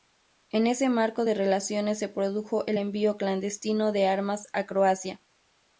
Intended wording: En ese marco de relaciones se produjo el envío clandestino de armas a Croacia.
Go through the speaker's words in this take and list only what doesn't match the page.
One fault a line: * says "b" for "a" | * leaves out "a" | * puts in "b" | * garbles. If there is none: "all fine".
all fine